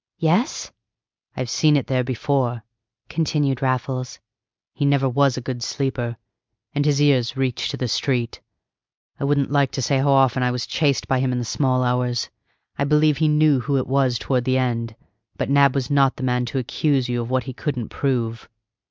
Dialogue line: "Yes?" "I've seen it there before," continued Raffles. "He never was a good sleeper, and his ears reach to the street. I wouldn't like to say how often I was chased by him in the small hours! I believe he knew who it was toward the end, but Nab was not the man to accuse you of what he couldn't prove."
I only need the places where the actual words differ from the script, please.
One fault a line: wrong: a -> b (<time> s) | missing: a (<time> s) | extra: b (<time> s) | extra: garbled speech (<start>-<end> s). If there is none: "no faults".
no faults